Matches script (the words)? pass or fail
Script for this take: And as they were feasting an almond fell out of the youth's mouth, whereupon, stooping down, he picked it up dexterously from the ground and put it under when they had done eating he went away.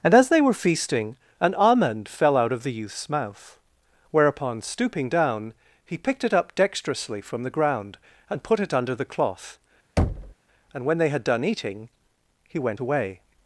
fail